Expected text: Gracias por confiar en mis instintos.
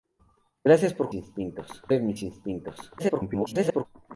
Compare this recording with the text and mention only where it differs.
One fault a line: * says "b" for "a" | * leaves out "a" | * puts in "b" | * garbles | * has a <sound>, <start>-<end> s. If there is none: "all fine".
* says "instintos" for "confiar"
* garbles